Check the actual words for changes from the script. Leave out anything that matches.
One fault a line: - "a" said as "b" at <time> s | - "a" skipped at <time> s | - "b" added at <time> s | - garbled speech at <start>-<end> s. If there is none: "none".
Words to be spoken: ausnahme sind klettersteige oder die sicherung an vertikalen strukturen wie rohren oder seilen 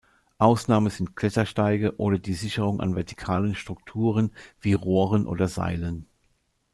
none